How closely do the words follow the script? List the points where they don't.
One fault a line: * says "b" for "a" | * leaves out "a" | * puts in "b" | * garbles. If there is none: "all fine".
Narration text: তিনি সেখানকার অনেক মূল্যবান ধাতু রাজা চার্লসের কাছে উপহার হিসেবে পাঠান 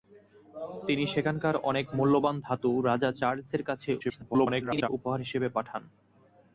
* garbles